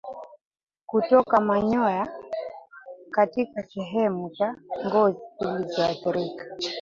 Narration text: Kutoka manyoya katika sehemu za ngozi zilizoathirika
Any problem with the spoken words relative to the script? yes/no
no